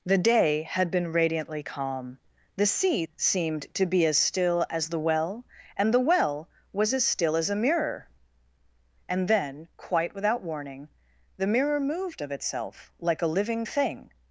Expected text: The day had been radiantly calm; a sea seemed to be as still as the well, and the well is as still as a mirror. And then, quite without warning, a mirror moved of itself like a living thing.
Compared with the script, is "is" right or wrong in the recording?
wrong